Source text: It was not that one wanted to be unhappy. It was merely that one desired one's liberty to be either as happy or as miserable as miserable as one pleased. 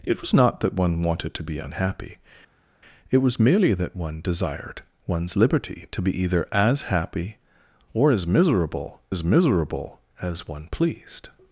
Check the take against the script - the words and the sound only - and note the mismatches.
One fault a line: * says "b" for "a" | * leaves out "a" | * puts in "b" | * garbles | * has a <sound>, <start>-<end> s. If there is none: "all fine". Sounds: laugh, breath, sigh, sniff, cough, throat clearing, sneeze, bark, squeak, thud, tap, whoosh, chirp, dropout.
all fine